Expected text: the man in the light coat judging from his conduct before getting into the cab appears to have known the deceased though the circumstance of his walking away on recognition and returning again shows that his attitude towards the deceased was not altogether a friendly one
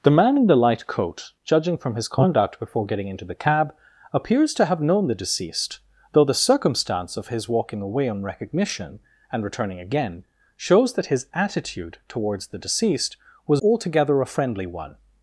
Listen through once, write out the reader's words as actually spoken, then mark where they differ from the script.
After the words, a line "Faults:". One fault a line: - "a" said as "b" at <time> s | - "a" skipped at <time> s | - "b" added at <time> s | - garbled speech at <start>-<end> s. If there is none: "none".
the man in the light coat judging from his conduct before getting into the cab appears to have known the deceased though the circumstance of his walking away on recognition and returning again shows that his attitude towards the deceased was altogether a friendly one
Faults:
- "not" skipped at 13.6 s